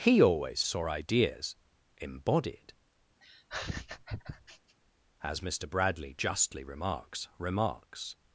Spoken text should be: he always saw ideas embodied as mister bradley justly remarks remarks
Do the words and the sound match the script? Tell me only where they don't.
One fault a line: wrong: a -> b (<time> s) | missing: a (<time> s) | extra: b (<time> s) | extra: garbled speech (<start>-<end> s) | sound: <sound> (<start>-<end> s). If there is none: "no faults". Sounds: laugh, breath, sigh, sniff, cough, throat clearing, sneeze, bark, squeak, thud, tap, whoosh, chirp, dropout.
sound: laugh (3.2-4.8 s)